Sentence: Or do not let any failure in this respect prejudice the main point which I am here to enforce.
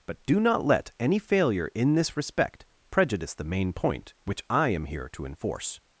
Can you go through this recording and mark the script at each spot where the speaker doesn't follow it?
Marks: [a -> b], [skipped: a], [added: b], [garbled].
[Or -> But] do not let any failure in this respect prejudice the main point which I am here to enforce.